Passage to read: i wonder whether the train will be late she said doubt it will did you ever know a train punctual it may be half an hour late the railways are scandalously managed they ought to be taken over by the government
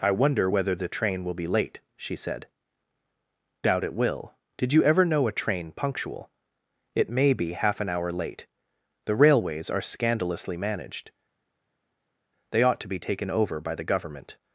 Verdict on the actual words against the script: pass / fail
pass